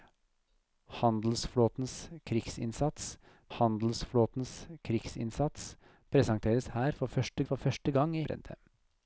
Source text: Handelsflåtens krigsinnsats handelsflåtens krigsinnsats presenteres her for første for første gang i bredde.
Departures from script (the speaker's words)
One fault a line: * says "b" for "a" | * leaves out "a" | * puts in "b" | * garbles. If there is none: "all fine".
all fine